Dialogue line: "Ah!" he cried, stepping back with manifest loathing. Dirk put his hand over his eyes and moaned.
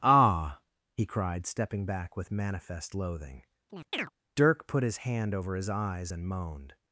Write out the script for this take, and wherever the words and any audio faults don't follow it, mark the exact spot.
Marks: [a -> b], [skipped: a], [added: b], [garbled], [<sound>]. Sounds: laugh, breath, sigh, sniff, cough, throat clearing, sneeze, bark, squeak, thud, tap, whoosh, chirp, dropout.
"Ah!" he cried, stepping back with manifest loathing. [chirp] Dirk put his hand over his eyes and moaned.